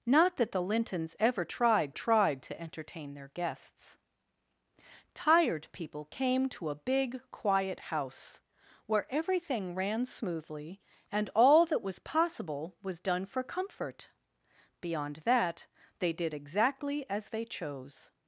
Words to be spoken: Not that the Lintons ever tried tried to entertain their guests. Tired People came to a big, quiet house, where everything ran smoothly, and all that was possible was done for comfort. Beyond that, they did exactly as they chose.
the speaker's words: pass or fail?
pass